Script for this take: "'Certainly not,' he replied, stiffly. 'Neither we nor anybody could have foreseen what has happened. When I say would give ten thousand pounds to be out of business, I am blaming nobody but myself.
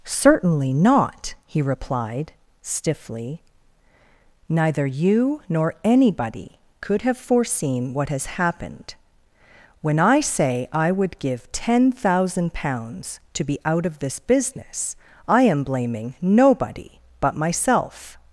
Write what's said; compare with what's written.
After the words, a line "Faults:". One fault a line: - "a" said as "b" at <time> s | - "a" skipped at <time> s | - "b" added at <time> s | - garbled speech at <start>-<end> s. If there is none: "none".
"'Certainly not,' he replied, stiffly. 'Neither you nor anybody could have foreseen what has happened. When I say I would give ten thousand pounds to be out of this business, I am blaming nobody but myself.
Faults:
- "we" said as "you" at 4.8 s
- "I" added at 10.7 s
- "this" added at 14.0 s